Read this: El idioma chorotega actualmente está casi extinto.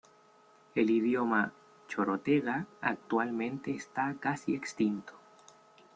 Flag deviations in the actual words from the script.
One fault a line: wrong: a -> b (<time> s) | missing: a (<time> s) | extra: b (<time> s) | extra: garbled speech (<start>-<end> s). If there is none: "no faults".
no faults